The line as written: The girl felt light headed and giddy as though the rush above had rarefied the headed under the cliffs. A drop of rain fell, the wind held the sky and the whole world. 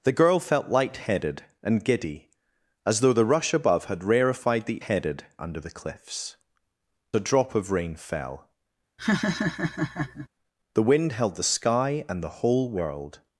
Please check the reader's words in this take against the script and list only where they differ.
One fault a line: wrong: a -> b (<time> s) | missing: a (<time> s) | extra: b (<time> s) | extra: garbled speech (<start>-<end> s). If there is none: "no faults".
no faults